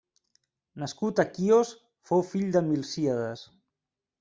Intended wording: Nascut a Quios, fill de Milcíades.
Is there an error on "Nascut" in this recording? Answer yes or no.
no